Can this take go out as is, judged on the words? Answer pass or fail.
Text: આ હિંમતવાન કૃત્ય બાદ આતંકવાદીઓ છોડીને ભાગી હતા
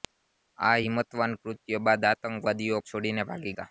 pass